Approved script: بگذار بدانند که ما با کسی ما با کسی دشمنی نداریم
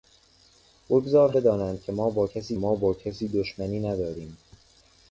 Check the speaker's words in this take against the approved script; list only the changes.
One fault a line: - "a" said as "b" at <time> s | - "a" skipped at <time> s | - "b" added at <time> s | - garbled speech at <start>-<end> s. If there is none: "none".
none